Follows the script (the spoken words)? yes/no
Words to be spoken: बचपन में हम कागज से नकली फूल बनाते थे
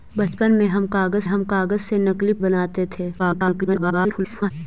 no